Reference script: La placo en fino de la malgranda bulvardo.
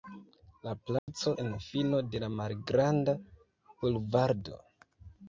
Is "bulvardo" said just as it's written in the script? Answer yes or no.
yes